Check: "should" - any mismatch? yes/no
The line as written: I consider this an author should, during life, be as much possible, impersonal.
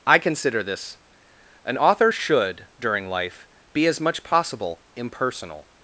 no